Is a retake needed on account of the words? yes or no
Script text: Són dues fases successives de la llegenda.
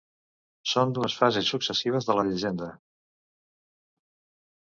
no